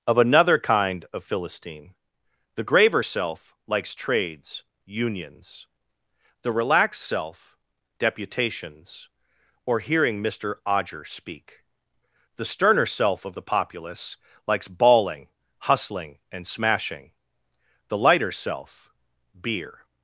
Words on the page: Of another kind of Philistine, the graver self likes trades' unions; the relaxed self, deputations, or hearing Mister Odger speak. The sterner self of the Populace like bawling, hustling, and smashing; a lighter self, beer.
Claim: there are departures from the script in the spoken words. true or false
true